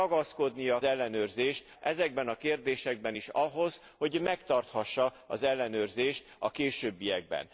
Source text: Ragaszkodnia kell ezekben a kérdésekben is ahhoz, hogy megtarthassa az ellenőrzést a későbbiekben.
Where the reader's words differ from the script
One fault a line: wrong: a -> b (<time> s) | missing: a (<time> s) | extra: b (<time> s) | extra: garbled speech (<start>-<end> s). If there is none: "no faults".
wrong: kell -> ellenőrzést (0.8 s)